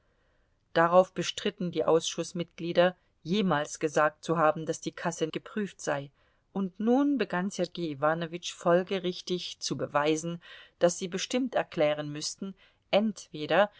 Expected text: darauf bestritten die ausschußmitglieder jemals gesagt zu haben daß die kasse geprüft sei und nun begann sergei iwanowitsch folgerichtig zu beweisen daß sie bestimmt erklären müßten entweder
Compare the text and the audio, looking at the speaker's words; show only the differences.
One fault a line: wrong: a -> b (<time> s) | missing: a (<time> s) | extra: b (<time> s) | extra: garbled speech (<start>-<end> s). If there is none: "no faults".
no faults